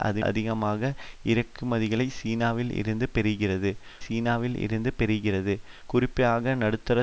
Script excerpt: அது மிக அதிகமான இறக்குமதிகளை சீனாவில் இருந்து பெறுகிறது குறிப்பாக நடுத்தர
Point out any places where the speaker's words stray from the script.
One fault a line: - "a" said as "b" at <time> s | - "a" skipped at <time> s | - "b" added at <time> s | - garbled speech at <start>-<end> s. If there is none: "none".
- "மிக" skipped at 0.2 s
- "சீனாவில் இருந்து பெறுகிறது" added at 4.0 s